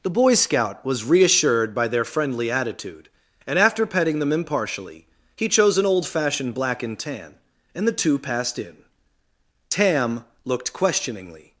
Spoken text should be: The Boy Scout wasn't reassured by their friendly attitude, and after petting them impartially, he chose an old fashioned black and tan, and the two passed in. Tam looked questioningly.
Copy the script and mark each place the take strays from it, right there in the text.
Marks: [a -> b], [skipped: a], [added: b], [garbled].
The Boy Scout [wasn't -> was] reassured by their friendly attitude, and after petting them impartially, he chose an old fashioned black and tan, and the two passed in. Tam looked questioningly.